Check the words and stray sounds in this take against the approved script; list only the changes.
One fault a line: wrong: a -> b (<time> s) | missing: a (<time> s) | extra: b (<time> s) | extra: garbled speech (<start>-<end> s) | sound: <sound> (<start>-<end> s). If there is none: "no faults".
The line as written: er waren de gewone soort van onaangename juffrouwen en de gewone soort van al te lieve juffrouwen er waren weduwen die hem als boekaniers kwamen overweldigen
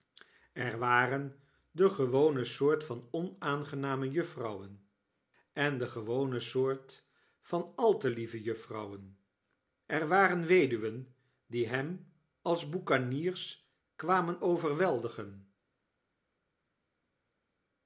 no faults